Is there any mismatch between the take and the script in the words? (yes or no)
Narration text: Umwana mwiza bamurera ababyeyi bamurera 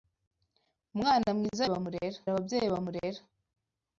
no